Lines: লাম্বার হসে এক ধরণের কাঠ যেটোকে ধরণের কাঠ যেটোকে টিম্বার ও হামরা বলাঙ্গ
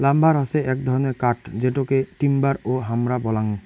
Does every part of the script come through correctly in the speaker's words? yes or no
no